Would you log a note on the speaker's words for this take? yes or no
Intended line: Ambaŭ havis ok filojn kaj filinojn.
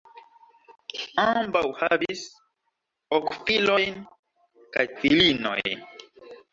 no